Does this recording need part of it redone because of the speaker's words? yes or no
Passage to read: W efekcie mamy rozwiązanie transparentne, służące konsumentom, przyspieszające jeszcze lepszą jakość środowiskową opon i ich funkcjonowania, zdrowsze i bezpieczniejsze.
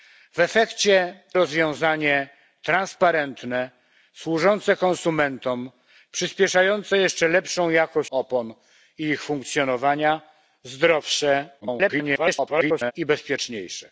yes